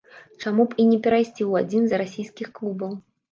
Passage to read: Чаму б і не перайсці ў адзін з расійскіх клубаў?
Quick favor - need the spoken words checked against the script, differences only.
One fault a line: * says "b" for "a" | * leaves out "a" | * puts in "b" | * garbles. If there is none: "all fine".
all fine